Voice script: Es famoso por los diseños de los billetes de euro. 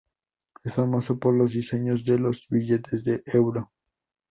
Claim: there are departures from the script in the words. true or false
false